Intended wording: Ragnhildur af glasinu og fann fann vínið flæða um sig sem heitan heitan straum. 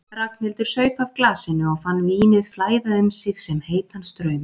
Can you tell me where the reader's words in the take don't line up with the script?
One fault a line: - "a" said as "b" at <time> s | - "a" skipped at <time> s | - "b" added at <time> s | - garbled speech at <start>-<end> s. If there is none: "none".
- "saup" added at 0.7 s
- "fann" skipped at 2.0 s
- "heitan" skipped at 4.1 s